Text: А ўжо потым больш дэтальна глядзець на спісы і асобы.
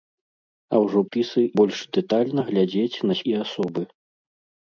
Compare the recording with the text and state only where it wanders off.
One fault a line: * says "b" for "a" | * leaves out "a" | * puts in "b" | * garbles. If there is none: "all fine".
* says "спісы" for "потым"
* leaves out "спісы"